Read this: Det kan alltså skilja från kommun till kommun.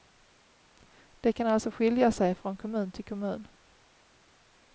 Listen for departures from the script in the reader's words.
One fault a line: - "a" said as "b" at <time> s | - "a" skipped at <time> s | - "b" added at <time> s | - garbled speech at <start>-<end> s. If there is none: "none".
- "sig" added at 2.1 s